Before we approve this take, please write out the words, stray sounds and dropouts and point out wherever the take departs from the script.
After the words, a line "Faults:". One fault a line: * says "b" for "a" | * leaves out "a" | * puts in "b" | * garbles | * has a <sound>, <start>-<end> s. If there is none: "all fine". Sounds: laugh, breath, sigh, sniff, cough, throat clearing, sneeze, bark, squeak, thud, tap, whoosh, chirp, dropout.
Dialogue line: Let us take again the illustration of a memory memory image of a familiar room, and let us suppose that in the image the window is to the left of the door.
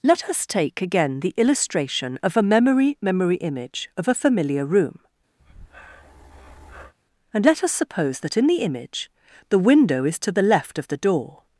Let us take again the illustration of a memory memory image of a familiar room, and let us suppose that in the image the window is to the left of the door.
Faults:
* has a breath, 5.4-6.9 s